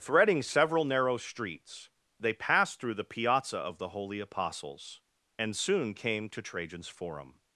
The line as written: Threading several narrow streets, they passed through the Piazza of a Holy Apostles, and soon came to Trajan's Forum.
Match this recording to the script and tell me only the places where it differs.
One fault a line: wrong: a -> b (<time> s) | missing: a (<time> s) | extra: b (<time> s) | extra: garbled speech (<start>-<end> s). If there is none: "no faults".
wrong: a -> the (3.8 s)